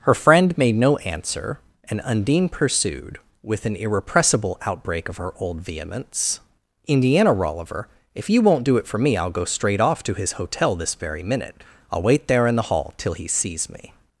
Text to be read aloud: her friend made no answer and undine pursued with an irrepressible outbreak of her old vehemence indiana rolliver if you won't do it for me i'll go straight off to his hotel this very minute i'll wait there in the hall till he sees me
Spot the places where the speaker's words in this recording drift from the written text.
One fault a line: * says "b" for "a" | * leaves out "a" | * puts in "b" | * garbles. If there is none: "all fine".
all fine